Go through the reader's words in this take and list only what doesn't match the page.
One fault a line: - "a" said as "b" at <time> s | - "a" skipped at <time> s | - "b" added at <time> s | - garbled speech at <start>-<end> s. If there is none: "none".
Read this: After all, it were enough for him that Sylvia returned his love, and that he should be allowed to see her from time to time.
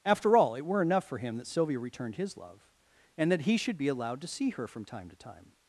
none